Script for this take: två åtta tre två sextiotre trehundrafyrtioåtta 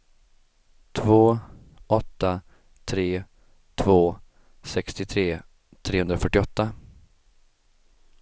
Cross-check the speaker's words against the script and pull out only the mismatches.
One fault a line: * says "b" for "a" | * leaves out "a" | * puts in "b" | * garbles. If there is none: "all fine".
all fine